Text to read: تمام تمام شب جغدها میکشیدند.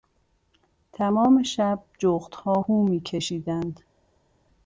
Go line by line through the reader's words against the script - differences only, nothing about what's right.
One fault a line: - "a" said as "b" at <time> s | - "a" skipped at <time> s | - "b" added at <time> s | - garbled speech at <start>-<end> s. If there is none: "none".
- "تمام" skipped at 1.4 s
- "هو" added at 2.6 s